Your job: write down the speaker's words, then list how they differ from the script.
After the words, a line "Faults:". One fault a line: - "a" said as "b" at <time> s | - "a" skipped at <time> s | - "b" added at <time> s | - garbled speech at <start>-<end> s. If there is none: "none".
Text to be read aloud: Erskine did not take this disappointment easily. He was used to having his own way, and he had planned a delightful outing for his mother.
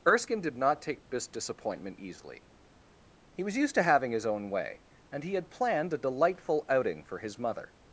Erskine did not take this disappointment easily. He was used to having his own way, and he had planned a delightful outing for his mother.
Faults:
none